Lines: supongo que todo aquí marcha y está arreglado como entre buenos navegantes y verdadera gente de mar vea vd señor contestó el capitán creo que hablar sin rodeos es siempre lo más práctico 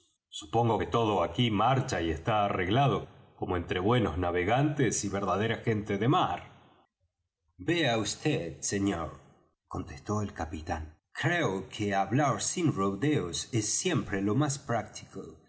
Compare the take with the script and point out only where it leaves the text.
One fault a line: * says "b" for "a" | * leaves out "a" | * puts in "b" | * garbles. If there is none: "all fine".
all fine